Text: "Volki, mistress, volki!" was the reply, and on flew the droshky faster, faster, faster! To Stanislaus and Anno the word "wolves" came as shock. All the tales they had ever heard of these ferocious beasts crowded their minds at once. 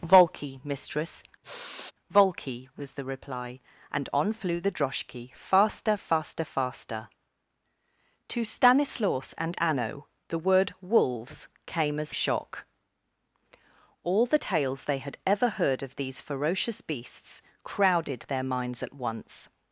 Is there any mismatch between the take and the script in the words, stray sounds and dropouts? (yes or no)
yes